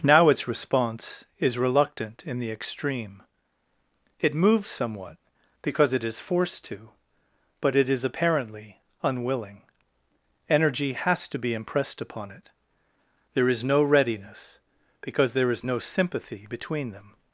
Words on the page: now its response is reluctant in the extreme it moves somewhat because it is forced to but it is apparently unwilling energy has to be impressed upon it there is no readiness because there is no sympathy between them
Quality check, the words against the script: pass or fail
pass